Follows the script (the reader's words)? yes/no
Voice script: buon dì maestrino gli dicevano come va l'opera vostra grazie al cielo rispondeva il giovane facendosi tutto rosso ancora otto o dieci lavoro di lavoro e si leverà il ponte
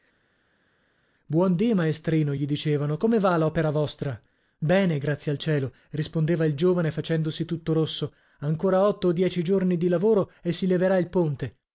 no